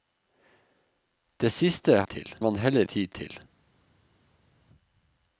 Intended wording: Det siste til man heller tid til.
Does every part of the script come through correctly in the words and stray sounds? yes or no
yes